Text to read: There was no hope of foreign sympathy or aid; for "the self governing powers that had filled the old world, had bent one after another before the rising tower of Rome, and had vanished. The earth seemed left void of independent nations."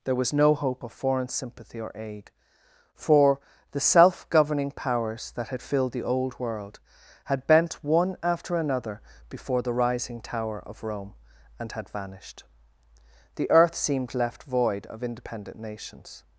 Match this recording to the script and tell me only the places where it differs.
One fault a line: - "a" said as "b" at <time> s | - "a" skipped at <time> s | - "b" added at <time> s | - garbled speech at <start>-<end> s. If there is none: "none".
none